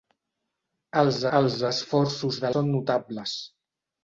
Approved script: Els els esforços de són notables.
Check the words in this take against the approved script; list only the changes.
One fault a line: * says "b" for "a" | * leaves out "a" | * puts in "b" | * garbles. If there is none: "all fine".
all fine